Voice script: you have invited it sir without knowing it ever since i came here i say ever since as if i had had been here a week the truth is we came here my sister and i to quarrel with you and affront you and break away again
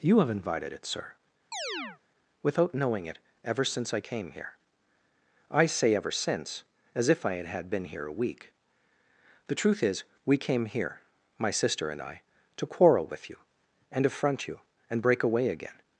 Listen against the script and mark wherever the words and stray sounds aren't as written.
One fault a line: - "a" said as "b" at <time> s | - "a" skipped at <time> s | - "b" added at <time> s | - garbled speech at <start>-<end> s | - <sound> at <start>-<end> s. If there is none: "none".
- chirp at 1.5-2.0 s